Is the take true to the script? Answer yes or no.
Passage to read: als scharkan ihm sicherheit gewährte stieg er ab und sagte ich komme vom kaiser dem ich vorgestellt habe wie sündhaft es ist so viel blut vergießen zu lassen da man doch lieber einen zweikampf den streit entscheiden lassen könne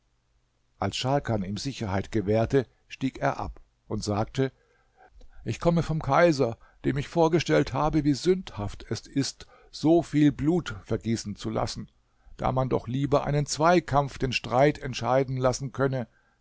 yes